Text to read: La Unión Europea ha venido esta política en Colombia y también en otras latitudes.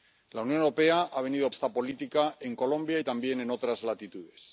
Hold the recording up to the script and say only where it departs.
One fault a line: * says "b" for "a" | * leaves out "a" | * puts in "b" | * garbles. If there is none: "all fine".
all fine